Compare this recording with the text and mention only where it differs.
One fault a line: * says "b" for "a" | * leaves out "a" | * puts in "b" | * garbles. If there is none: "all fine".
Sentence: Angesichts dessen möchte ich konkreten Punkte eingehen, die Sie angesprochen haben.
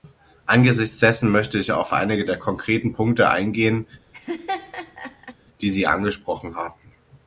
* puts in "auf einige der"